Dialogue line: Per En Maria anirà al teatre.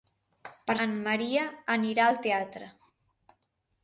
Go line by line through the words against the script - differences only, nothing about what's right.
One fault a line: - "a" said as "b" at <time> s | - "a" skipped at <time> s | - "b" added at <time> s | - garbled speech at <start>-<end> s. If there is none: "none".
none